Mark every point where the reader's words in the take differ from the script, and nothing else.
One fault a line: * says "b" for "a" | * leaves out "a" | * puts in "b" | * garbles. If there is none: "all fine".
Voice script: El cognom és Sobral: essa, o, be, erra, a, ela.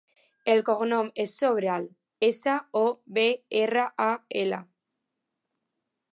all fine